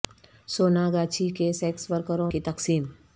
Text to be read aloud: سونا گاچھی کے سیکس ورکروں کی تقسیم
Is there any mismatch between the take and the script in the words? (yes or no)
no